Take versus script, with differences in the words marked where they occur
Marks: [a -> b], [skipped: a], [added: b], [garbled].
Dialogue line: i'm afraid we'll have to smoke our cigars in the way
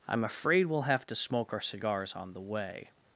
i'm afraid we'll have to smoke our cigars [in -> on] the way